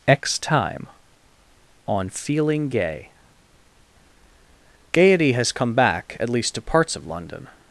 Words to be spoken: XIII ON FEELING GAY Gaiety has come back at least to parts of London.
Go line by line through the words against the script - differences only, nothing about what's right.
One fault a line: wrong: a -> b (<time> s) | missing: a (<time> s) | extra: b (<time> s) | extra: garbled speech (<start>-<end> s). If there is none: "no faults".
wrong: XIII -> X time (0.1 s)